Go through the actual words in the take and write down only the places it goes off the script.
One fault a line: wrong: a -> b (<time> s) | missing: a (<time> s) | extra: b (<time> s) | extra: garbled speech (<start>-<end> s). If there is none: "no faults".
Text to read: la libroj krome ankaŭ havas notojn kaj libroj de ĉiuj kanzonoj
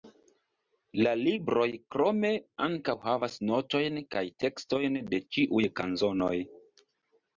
wrong: libroj -> tekstojn (4.5 s)